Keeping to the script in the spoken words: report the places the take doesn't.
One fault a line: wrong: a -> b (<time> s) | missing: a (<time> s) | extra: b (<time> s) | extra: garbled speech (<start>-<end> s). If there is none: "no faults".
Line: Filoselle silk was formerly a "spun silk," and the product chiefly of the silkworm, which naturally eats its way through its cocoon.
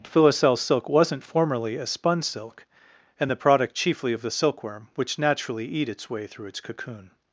wrong: was -> wasn't (0.9 s)
wrong: eats -> eat (5.7 s)